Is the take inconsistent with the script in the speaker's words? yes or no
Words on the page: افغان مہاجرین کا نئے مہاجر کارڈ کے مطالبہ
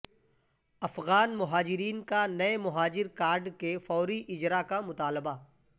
yes